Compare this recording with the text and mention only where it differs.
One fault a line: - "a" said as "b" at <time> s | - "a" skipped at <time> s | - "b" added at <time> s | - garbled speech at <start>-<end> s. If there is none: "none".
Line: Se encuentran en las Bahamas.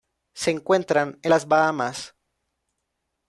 none